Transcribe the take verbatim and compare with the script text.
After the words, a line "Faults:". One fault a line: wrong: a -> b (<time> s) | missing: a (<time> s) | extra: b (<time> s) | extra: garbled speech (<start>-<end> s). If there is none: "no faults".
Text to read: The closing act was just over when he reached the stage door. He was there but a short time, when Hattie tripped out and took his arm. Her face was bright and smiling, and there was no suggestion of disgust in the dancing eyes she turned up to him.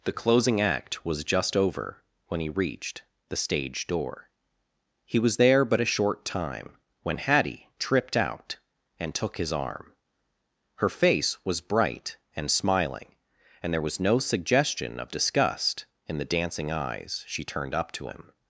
The closing act was just over when he reached the stage door. He was there but a short time, when Hattie tripped out and took his arm. Her face was bright and smiling, and there was no suggestion of disgust in the dancing eyes she turned up to him.
Faults:
no faults